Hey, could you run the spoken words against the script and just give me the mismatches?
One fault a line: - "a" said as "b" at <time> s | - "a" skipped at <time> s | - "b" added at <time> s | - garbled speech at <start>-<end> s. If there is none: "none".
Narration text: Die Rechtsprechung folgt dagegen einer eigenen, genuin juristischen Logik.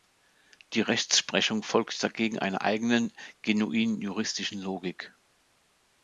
none